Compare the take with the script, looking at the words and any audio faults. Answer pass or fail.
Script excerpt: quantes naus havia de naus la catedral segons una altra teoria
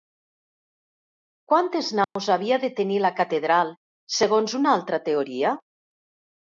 fail